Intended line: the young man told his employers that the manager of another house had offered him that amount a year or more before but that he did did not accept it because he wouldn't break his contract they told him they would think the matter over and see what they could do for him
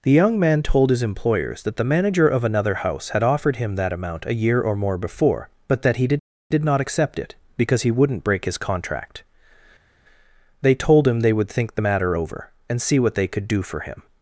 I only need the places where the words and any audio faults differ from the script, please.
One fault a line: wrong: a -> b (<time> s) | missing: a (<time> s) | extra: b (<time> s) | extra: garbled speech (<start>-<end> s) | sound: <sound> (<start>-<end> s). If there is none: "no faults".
no faults